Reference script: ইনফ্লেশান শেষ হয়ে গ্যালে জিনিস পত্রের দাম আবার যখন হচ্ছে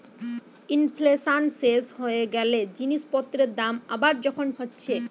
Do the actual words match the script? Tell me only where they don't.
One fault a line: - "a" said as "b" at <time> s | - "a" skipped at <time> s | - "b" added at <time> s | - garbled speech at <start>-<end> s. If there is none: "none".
none